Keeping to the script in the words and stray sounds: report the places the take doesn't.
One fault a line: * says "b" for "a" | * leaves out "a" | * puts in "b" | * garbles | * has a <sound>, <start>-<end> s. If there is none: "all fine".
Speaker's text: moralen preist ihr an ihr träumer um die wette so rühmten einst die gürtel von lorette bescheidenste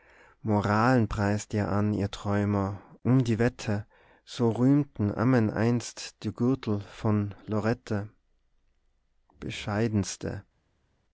* puts in "ammen"